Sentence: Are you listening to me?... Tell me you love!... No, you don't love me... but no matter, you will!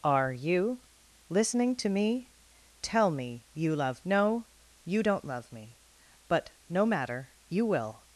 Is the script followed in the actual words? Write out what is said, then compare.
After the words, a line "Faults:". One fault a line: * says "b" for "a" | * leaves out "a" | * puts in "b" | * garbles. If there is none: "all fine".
Are you listening to me?... Tell me you love!... No, you don't love me... but no matter, you will!
Faults:
all fine